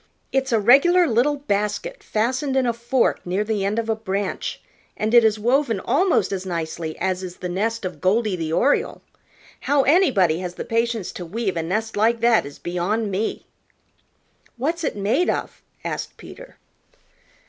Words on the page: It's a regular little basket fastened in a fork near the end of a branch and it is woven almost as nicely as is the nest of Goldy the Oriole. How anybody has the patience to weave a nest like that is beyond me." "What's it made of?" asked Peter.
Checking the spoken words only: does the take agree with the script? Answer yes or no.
yes